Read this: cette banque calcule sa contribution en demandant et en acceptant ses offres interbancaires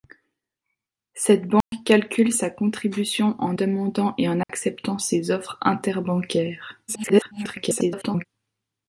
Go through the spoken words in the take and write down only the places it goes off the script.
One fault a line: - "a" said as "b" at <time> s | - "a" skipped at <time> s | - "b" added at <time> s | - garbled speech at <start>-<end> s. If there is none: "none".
- garbled speech at 6.9-8.3 s